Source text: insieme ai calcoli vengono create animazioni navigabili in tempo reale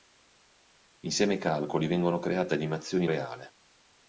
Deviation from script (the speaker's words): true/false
true